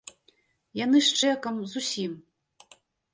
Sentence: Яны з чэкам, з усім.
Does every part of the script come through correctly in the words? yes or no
yes